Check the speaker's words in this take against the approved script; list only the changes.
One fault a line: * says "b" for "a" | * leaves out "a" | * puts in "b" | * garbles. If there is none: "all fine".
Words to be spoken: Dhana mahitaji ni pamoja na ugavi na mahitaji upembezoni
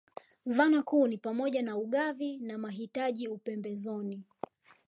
* says "kuu" for "mahitaji"